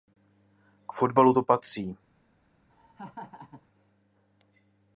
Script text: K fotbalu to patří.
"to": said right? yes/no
yes